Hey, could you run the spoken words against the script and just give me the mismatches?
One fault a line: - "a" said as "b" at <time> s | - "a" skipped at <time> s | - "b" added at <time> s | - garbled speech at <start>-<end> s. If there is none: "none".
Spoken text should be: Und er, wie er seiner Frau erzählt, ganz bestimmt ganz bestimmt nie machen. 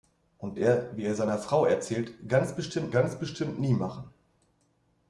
none